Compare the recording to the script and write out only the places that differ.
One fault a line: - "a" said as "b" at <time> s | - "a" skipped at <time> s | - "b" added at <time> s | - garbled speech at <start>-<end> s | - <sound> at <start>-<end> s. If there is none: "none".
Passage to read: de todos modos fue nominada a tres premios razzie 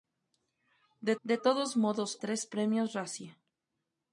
- "de" added at 1.2 s
- "fue nominada a" skipped at 2.2 s